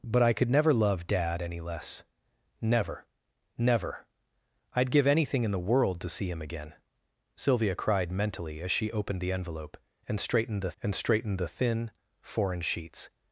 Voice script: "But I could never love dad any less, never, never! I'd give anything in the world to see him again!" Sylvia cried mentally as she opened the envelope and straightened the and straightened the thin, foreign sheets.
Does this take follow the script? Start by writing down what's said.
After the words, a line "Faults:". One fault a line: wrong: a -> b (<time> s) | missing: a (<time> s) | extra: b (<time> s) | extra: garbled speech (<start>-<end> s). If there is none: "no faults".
"But I could never love dad any less, never, never! I'd give anything in the world to see him again!" Sylvia cried mentally as she opened the envelope and straightened the and straightened the thin, foreign sheets.
Faults:
no faults